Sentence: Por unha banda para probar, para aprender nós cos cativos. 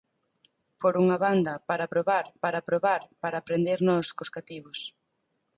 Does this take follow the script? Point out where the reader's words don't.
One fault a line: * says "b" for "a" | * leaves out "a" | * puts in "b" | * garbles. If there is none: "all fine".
* puts in "probar para"